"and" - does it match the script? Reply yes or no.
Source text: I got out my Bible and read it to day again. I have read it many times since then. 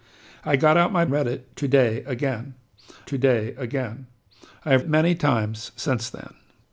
no